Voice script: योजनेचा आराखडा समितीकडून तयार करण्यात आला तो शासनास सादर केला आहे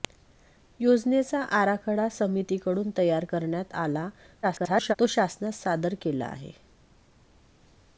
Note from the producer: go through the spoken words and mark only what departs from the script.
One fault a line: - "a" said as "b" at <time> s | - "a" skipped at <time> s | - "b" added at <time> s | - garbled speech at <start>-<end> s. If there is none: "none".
- garbled speech at 4.4-4.9 s